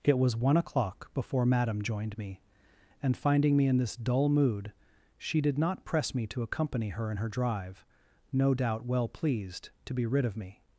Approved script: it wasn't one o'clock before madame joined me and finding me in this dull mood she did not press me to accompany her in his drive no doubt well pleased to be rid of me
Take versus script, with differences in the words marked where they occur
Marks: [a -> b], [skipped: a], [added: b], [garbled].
it [wasn't -> was] one o'clock before madame joined me and finding me in this dull mood she did not press me to accompany her in [his -> her] drive no doubt well pleased to be rid of me